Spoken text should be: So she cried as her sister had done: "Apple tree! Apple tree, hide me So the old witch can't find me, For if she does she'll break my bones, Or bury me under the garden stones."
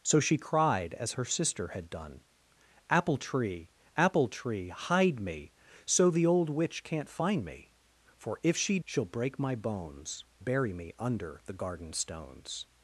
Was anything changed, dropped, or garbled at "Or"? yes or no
yes